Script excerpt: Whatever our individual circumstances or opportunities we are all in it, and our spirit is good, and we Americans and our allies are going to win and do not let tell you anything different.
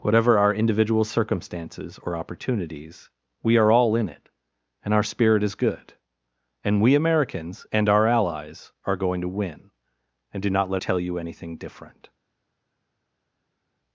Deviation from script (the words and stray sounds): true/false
false